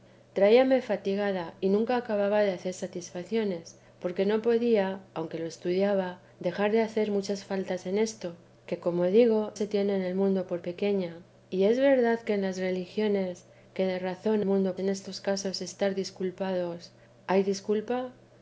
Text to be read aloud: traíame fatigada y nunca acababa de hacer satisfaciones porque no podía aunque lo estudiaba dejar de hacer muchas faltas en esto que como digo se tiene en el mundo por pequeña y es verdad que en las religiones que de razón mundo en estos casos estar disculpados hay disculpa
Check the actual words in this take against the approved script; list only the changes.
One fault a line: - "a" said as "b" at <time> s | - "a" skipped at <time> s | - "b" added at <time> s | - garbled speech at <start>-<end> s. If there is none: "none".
none